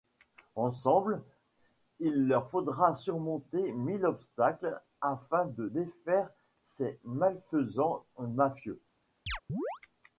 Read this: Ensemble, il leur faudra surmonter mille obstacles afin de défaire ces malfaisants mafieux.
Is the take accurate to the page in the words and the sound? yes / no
no